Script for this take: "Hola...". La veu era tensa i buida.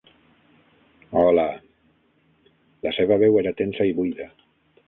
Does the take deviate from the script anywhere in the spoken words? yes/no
yes